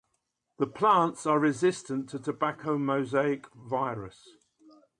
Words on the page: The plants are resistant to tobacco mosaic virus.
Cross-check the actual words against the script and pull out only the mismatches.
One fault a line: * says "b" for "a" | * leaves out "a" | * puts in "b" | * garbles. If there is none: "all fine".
all fine